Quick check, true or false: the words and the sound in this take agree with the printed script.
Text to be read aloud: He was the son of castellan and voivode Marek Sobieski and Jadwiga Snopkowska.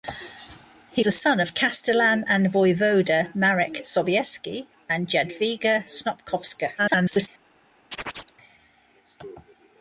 false